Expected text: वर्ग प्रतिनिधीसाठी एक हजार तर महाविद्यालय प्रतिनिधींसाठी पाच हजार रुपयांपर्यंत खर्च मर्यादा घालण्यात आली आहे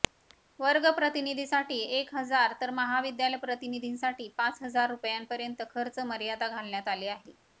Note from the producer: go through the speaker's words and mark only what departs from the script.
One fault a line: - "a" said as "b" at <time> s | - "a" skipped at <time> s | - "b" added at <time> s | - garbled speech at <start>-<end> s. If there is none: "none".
none